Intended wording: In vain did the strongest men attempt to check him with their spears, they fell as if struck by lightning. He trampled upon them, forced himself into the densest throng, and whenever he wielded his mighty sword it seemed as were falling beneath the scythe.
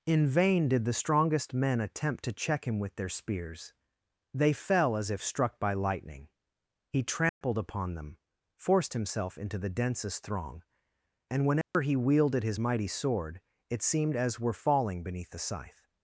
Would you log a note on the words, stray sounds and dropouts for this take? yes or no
yes